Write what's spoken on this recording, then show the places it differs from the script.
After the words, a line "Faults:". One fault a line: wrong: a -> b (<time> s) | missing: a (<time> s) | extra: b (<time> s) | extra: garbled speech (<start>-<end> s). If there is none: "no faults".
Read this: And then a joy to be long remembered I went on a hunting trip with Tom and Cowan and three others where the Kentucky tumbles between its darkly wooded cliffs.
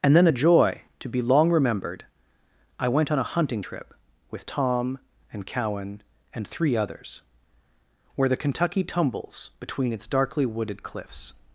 And then a joy to be long remembered I went on a hunting trip with Tom and Cowan and three others where the Kentucky tumbles between its darkly wooded cliffs.
Faults:
no faults